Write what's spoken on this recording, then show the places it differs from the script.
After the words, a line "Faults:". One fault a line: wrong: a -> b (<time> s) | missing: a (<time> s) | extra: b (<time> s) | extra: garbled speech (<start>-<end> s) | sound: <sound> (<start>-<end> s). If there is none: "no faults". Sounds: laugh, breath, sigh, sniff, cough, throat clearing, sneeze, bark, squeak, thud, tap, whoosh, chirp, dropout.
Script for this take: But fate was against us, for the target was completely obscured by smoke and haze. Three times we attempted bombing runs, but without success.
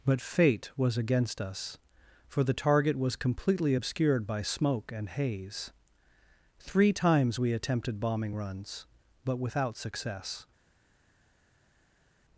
But fate was against us, for the target was completely obscured by smoke and haze. Three times we attempted bombing runs, but without success.
Faults:
no faults